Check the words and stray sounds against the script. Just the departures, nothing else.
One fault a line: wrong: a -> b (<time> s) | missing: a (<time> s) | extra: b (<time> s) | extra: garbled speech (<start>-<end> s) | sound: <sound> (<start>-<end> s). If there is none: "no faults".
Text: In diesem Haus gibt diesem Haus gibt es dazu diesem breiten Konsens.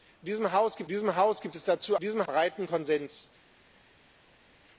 no faults